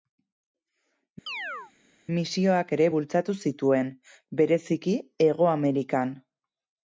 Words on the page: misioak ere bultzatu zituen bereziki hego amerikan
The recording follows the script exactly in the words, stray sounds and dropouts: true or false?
false